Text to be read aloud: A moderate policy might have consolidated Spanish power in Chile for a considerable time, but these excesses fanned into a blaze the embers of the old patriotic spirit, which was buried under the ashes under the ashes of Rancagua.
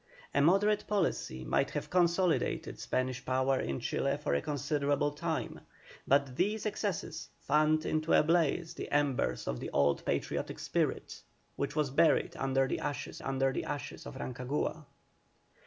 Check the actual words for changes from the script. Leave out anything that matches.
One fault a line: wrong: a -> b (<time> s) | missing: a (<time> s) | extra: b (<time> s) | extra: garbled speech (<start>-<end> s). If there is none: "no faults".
no faults